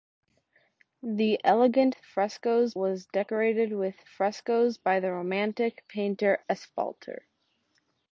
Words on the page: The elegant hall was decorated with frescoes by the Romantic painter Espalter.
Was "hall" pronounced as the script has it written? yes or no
no